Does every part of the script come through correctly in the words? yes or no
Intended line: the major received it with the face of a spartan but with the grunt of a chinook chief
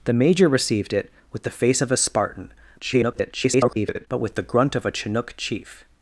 no